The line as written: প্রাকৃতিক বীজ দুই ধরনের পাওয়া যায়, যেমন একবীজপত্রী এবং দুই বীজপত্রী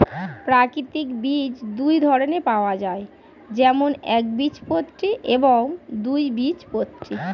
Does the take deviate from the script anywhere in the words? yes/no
no